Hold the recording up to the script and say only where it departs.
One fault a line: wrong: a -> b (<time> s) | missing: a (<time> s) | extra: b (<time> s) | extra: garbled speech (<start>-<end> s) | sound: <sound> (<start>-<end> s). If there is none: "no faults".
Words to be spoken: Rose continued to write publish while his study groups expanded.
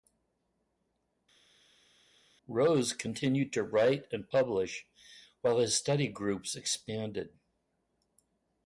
extra: and (4.1 s)